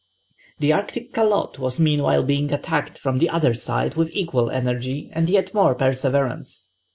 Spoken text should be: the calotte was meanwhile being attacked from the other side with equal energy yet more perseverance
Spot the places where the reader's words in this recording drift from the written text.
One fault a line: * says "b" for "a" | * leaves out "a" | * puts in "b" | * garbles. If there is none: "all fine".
* puts in "arctic"
* puts in "and"